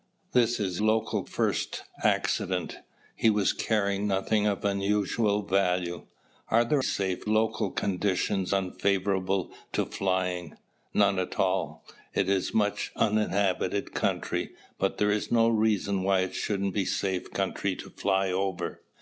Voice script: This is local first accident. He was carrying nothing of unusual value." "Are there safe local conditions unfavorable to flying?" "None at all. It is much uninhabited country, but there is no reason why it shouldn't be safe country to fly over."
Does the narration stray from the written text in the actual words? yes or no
no